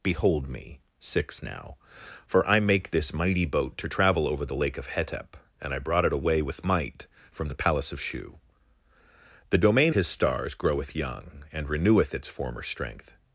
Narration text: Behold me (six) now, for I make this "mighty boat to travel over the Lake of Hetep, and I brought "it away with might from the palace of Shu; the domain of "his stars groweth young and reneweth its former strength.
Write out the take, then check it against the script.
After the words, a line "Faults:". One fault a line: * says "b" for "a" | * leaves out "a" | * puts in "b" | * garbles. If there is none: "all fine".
Behold me (six) now, for I make this "mighty boat to travel over the Lake of Hetep, and I brought "it away with might from the palace of Shu; the domain "his stars groweth young and reneweth its former strength.
Faults:
* leaves out "of"